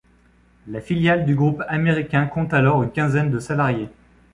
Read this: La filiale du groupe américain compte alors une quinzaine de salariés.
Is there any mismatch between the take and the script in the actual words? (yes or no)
no